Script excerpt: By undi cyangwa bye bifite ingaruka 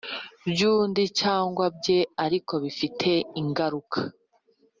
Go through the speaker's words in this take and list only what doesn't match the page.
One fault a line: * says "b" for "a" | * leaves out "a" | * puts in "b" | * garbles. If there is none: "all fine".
* puts in "ariko"